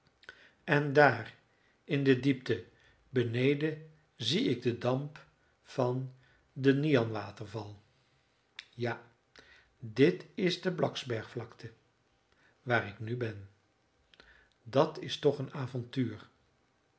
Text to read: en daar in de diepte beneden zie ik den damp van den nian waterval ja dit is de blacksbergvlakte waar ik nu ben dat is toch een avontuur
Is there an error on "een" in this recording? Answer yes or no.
no